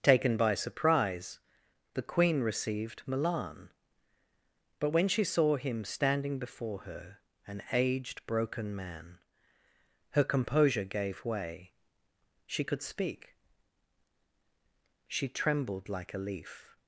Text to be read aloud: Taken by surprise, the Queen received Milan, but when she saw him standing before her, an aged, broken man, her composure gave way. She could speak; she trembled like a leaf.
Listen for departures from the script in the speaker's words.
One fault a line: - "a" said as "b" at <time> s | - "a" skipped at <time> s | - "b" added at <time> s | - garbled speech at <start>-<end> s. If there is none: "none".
none